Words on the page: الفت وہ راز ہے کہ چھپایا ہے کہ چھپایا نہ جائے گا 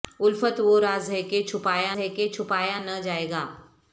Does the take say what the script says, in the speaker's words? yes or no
yes